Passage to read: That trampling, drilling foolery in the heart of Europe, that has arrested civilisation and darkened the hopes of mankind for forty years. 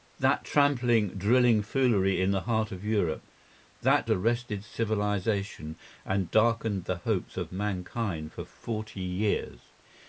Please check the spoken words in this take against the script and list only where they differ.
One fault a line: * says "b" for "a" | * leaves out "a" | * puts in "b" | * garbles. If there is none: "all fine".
* leaves out "has"